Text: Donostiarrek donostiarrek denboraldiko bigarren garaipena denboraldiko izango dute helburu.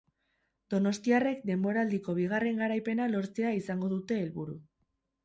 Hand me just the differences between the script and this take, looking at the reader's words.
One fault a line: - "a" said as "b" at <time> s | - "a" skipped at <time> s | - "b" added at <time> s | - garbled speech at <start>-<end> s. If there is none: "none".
- "donostiarrek" skipped at 1.4 s
- "denboraldiko" said as "lortzea" at 3.1 s